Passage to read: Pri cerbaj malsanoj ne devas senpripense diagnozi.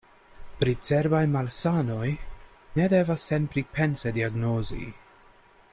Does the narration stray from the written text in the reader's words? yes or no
no